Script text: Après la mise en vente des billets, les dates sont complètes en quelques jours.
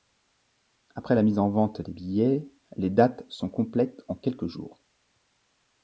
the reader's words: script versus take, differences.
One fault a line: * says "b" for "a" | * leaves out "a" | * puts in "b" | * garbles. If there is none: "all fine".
all fine